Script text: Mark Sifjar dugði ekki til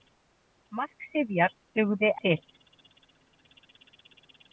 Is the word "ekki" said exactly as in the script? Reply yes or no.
no